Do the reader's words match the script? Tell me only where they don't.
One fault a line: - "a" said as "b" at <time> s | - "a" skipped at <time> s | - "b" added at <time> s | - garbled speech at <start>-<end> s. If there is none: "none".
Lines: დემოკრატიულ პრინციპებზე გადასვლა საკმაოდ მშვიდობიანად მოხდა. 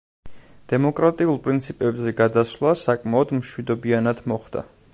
none